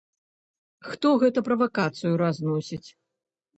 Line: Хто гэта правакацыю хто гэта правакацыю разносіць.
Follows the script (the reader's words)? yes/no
no